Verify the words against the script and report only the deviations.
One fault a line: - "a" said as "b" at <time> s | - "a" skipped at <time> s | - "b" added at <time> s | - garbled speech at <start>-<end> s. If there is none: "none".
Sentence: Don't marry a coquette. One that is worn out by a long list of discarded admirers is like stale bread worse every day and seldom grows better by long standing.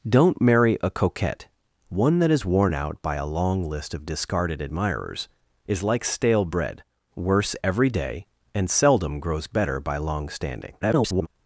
- garbled speech at 10.8-11.3 s